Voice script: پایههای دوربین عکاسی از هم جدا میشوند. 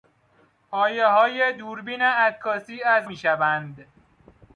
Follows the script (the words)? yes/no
no